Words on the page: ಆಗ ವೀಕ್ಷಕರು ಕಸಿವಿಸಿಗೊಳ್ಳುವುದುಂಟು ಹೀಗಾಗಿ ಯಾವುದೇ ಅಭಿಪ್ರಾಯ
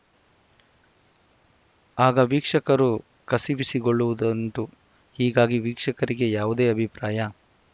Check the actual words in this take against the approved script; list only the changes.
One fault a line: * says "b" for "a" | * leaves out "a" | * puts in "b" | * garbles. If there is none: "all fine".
* puts in "ವೀಕ್ಷಕರಿಗೆ"